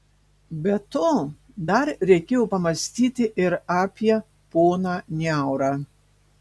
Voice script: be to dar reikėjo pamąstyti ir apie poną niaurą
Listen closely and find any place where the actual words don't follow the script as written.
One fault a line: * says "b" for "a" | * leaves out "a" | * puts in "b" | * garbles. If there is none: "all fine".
all fine